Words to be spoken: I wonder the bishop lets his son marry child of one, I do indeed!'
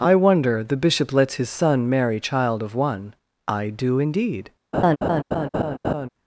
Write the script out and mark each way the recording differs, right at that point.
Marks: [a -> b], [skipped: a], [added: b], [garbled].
I wonder the bishop lets his son marry child of one, I do indeed!'